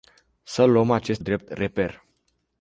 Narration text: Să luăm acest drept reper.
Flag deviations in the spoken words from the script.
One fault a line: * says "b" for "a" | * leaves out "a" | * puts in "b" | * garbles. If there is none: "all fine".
all fine